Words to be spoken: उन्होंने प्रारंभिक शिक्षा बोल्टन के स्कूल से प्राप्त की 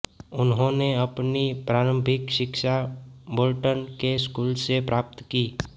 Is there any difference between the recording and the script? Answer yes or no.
yes